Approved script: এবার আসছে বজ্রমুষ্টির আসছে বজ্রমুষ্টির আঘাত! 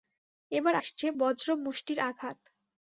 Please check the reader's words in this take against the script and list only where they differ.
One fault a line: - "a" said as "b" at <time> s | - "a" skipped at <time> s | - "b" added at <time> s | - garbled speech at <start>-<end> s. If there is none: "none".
- "আসছে বজ্রমুষ্টির" skipped at 2.0 s